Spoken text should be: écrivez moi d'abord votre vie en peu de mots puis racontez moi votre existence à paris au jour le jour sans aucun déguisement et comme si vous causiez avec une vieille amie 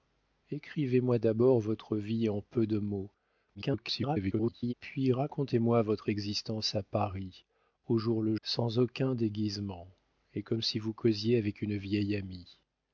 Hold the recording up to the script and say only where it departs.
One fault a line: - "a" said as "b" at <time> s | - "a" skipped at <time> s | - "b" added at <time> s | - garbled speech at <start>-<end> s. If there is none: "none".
- garbled speech at 3.5-4.7 s
- "jour" skipped at 8.3 s